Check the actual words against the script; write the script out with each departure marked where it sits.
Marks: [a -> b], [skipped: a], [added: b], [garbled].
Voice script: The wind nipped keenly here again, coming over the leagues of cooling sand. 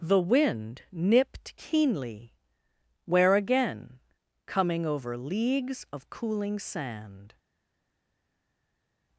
The wind nipped keenly [here -> where] again, coming over [skipped: the] leagues of cooling sand.